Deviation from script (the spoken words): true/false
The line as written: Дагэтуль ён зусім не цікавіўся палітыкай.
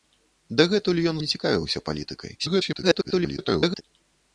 true